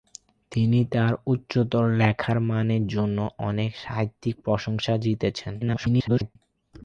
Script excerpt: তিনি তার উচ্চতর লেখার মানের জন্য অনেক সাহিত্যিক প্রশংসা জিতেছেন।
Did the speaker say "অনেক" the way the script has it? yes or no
yes